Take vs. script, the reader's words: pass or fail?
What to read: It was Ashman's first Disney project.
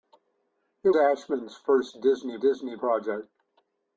fail